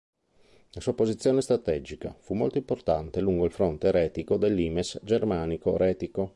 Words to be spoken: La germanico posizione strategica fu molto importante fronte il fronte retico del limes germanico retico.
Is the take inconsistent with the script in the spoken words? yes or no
yes